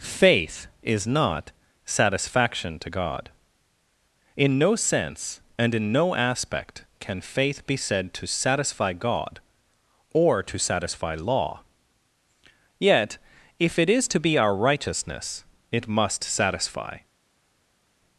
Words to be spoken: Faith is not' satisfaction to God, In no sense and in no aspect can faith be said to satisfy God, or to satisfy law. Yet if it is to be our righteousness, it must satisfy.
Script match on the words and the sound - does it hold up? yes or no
yes